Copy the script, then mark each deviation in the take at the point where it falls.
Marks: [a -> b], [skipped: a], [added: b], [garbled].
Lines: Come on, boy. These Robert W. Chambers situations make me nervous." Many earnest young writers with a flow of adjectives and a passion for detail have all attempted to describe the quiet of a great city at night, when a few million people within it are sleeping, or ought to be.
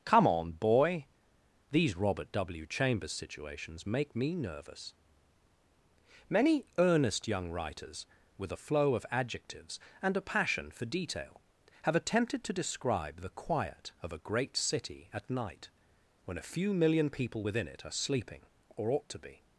Come on, boy. These Robert W. Chambers situations make me nervous." Many earnest young writers with a flow of adjectives and a passion for detail have [skipped: all] attempted to describe the quiet of a great city at night, when a few million people within it are sleeping, or ought to be.